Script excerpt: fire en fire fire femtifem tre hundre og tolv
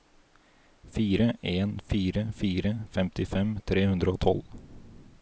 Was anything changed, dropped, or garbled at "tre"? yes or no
no